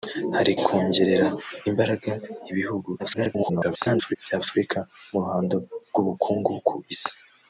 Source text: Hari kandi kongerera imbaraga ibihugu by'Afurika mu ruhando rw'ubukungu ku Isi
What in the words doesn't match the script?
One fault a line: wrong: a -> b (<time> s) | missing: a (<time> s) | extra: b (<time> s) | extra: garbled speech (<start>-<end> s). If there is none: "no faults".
missing: kandi (0.5 s)
extra: garbled speech (3.0-4.2 s)